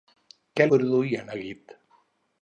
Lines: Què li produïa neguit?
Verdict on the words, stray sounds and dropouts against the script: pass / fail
fail